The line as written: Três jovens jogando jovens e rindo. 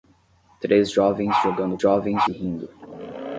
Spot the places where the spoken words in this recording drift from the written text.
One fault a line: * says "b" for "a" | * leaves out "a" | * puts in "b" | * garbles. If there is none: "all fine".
all fine